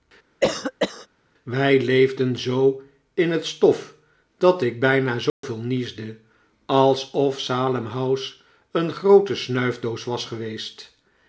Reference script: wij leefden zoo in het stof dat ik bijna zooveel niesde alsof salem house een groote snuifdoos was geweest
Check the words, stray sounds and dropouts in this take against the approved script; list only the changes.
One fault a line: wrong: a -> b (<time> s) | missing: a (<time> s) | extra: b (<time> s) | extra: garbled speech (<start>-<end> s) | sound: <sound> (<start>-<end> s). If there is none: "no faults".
sound: cough (0.4-1.1 s)
sound: dropout (5.3-5.4 s)